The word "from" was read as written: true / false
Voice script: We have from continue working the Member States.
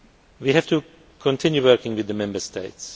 false